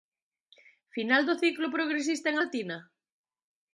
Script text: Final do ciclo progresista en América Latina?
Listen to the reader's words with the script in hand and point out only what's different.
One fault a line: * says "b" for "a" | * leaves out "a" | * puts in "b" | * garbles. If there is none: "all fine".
* leaves out "América"